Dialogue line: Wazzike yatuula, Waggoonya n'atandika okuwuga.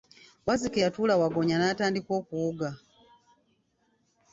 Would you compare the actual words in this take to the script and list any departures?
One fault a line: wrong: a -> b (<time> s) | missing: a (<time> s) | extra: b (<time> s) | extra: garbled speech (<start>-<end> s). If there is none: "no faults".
no faults